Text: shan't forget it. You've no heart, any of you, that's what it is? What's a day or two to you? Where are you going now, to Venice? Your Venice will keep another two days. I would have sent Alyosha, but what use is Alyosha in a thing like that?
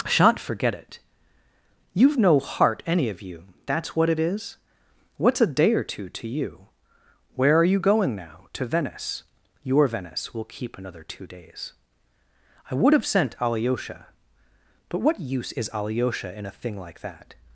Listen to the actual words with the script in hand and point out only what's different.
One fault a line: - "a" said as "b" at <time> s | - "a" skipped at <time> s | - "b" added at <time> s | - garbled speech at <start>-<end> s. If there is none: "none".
none